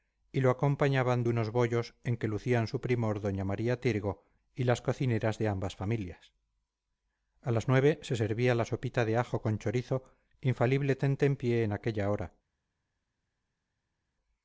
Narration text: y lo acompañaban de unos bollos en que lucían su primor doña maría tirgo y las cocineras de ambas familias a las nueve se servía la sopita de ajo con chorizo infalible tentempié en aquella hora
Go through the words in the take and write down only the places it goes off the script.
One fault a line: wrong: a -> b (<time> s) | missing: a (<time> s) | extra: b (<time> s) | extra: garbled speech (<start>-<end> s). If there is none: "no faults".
no faults